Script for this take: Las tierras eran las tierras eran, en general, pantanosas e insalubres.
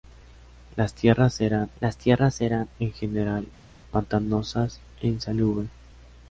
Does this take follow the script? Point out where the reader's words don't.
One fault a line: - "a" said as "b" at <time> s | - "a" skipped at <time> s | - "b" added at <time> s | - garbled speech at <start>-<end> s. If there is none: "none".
none